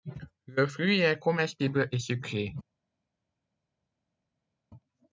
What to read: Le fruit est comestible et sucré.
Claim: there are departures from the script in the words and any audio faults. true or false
false